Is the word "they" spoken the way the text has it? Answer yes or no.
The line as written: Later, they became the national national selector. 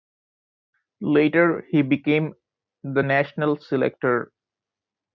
no